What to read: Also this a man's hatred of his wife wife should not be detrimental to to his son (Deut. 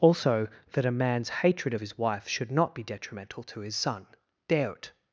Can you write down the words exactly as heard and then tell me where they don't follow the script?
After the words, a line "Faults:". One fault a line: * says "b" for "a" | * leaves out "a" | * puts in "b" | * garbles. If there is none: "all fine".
Also that a man's hatred of his wife should not be detrimental to his son (Deut.
Faults:
* says "that" for "this"
* leaves out "wife"
* leaves out "to"